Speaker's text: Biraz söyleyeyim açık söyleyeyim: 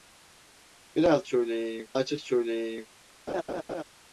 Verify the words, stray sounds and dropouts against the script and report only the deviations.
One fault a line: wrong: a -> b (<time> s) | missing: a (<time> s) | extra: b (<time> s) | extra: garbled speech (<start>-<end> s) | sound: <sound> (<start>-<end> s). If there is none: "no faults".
sound: laugh (3.3-3.8 s)